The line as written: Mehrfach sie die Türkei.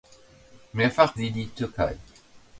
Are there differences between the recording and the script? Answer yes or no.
no